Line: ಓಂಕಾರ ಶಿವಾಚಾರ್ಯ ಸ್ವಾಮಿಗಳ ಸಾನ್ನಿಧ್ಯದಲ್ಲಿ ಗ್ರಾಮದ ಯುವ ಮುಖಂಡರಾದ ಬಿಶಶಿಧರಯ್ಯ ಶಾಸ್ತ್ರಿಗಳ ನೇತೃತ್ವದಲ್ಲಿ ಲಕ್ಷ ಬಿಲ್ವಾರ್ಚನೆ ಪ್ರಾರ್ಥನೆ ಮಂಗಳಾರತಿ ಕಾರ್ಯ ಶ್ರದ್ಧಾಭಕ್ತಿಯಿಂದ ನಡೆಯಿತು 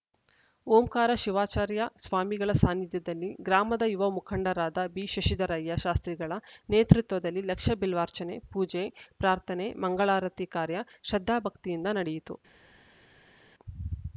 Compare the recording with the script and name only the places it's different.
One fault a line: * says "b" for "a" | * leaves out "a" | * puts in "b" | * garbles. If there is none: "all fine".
* puts in "ಪೂಜೆ"